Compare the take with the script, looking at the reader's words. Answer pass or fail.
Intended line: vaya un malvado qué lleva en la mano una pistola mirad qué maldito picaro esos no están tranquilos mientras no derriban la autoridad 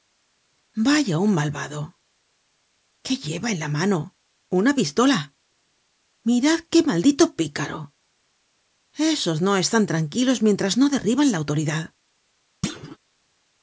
pass